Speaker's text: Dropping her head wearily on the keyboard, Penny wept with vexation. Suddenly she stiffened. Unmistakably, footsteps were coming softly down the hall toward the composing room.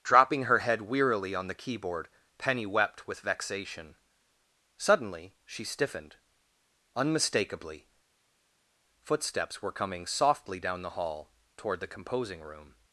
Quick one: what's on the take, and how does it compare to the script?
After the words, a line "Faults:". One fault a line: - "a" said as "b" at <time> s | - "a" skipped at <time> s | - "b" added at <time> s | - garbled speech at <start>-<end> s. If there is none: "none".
Dropping her head wearily on the keyboard, Penny wept with vexation. Suddenly she stiffened. Unmistakably, footsteps were coming softly down the hall toward the composing room.
Faults:
none